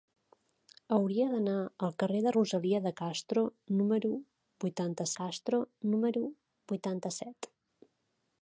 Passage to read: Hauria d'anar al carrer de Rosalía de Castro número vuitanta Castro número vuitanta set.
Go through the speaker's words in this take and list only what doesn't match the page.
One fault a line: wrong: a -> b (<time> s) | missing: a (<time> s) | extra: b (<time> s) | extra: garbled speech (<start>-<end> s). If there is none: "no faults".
no faults